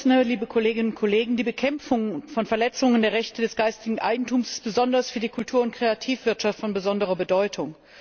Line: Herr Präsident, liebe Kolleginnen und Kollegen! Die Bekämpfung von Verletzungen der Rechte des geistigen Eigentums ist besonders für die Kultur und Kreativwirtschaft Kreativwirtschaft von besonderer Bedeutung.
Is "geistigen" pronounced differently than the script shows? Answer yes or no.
no